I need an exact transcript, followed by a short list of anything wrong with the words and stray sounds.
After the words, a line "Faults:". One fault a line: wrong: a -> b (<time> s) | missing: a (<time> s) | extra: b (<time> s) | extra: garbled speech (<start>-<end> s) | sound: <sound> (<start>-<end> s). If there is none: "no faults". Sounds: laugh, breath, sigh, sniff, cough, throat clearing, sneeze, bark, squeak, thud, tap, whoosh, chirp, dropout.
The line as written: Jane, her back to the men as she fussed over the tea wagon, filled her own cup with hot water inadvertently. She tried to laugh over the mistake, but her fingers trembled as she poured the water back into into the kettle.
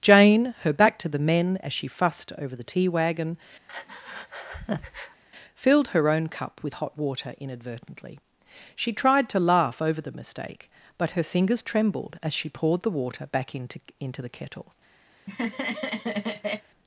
Jane, her back to the men as she fussed over the tea wagon, filled her own cup with hot water inadvertently. She tried to laugh over the mistake, but her fingers trembled as she poured the water back into into the kettle.
Faults:
sound: breath (3.7-5.2 s)
sound: laugh (15.1-16.7 s)